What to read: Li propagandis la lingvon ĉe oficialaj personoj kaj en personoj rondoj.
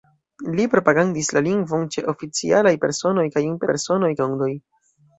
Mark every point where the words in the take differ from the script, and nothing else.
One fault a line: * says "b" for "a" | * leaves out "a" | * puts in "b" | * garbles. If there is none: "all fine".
all fine